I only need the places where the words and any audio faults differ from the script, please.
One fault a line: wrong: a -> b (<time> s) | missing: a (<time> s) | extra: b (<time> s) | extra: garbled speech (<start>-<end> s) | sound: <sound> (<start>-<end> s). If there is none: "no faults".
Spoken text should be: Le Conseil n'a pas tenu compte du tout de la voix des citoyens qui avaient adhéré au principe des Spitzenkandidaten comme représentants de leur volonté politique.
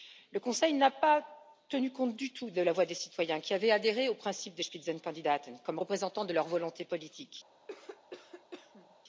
sound: cough (7.7-8.9 s)